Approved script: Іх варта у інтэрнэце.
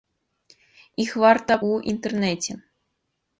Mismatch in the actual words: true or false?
false